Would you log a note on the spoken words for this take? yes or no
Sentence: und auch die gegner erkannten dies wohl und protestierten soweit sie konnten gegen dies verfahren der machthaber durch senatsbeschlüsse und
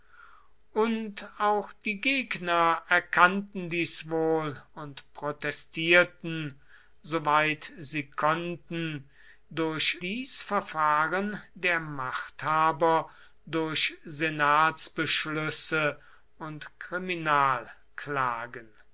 yes